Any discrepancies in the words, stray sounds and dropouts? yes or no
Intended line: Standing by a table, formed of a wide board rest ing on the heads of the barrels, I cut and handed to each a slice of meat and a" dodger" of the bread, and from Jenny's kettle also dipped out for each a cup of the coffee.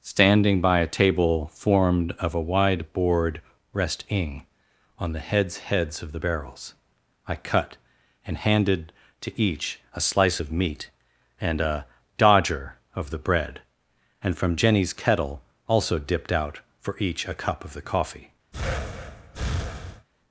yes